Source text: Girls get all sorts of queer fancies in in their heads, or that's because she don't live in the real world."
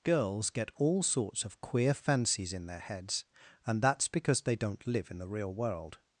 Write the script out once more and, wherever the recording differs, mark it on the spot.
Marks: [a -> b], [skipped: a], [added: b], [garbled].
Girls get all sorts of queer fancies in [skipped: in] their heads, [or -> and] that's because [she -> they] don't live in the real world."